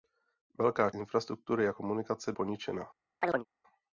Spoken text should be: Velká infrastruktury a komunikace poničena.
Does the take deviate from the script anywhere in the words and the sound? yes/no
yes